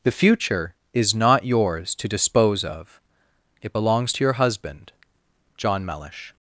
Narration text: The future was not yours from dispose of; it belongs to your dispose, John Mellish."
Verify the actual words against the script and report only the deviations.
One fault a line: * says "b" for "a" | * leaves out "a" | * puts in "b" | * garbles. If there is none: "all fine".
* says "is" for "was"
* says "to" for "from"
* says "husband" for "dispose"